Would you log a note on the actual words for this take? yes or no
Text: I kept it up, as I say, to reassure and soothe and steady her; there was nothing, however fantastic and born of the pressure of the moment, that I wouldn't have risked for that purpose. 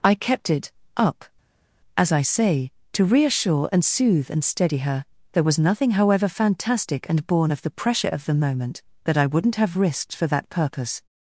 no